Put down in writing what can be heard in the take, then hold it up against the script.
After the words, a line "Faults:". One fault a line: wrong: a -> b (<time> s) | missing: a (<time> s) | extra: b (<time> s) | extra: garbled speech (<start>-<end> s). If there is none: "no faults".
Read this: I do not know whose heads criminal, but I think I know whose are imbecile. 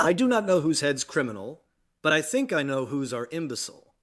I do not know whose heads criminal, but I think I know whose are imbecile.
Faults:
no faults